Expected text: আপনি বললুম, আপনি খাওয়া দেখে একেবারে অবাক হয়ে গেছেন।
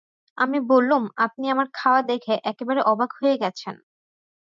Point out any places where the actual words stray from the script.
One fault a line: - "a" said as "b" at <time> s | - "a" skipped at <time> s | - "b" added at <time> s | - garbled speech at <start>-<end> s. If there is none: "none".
- "আপনি" said as "আমি" at 0.4 s
- "আমার" added at 1.5 s